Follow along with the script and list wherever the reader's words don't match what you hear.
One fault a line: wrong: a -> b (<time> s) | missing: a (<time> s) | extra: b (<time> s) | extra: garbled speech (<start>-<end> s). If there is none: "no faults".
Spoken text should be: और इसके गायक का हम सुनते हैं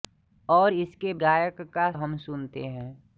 no faults